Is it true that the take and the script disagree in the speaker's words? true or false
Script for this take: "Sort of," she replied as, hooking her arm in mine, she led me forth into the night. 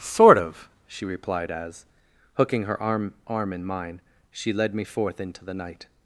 true